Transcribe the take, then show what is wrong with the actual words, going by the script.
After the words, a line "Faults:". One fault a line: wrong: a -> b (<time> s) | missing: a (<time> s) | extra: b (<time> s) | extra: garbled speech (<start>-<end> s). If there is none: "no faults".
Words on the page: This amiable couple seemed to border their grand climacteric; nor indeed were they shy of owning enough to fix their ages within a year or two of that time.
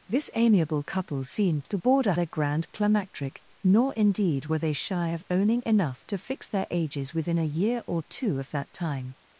This amiable couple seemed to border their grand climacteric; nor indeed were they shy of owning enough to fix their ages within a year or two of that time.
Faults:
no faults